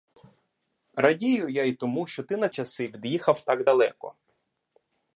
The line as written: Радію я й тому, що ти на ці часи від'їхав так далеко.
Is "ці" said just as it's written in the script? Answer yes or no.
no